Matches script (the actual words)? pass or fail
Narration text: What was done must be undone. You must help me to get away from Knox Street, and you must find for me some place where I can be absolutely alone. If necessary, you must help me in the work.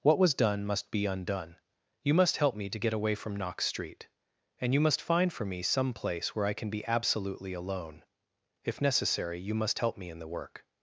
pass